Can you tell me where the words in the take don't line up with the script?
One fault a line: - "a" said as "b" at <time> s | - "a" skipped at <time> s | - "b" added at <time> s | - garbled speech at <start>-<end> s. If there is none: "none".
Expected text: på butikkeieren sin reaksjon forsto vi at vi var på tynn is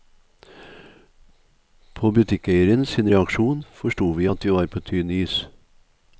none